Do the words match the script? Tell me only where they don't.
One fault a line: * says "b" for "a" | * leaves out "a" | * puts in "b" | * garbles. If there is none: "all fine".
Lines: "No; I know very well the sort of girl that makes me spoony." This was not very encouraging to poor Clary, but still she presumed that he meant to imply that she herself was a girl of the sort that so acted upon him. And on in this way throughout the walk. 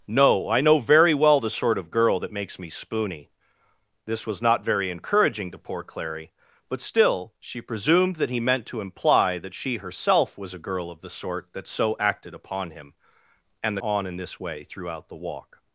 all fine